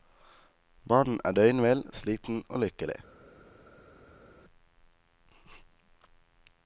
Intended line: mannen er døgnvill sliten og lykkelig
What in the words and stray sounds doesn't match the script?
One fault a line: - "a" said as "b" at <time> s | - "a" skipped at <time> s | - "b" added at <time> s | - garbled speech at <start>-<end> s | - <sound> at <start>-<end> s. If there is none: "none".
none